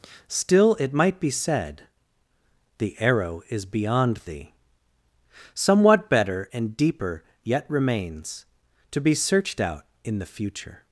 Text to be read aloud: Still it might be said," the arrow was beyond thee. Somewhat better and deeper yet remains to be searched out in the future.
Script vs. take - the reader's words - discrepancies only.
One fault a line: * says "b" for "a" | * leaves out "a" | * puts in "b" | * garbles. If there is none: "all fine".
* says "is" for "was"